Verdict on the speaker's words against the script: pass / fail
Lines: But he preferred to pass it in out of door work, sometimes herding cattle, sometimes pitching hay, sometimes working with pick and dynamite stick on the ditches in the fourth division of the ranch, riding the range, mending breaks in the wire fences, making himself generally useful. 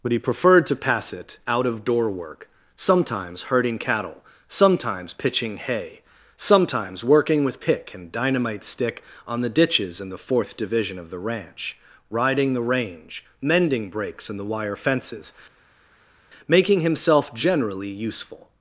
fail